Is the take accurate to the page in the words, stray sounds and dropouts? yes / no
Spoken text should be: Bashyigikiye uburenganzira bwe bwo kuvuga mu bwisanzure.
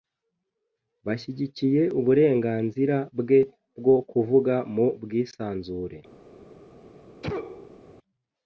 no